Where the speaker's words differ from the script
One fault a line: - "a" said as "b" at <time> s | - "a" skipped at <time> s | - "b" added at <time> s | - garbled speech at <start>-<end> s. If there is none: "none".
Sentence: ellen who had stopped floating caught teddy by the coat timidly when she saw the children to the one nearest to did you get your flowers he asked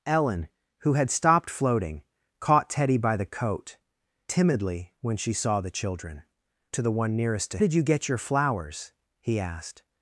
none